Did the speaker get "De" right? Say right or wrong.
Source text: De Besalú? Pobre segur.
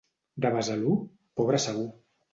right